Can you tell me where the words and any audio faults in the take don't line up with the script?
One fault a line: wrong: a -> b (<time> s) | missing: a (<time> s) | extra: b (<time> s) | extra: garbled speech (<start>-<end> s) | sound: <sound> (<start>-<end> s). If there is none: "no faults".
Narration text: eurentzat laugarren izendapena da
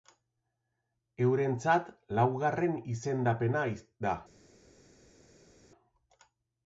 no faults